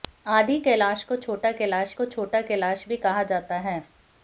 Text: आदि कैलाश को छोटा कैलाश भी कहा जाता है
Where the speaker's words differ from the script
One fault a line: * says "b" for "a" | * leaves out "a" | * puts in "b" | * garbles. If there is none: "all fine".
* puts in "को छोटा कैलाश"